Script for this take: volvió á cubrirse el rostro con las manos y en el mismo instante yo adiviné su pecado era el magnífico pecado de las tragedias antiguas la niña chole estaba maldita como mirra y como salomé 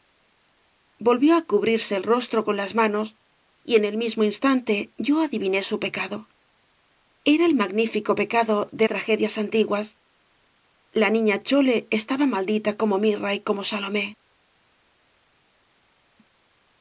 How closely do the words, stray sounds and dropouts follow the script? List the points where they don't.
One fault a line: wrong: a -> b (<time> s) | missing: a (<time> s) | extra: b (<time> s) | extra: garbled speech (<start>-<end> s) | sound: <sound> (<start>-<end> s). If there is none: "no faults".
missing: las (8.9 s)